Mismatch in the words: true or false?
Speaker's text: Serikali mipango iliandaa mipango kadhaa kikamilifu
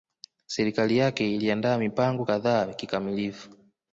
true